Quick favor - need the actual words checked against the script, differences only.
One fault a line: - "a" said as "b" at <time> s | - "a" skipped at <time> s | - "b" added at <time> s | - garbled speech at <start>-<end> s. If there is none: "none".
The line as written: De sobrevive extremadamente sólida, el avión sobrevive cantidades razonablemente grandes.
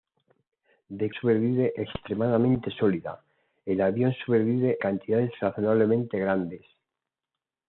none